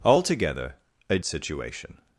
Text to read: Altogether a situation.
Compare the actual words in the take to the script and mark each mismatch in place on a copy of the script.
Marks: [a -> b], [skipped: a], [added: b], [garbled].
Altogether a situation.